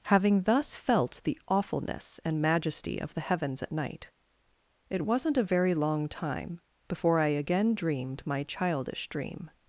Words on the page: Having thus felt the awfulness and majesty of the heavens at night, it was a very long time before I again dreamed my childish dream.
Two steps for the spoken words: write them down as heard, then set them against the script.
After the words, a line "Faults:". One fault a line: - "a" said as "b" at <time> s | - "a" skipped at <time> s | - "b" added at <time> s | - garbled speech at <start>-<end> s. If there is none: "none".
Having thus felt the awfulness and majesty of the heavens at night, it wasn't a very long time before I again dreamed my childish dream.
Faults:
- "was" said as "wasn't" at 5.1 s